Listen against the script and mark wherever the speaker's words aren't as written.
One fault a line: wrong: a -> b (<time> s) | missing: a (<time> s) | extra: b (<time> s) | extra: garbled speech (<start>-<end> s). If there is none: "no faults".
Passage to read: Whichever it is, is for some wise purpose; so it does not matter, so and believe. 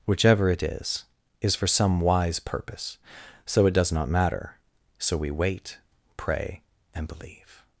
extra: we wait pray (5.2 s)